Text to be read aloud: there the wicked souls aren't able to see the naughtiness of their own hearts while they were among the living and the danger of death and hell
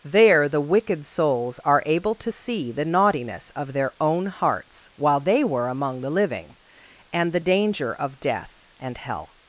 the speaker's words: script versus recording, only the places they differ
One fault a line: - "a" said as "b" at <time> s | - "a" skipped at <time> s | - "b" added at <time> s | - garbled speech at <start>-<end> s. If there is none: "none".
- "aren't" said as "are" at 1.6 s